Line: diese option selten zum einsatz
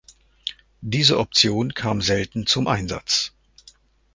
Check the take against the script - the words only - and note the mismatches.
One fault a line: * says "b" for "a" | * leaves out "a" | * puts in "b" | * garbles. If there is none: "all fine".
* puts in "kam"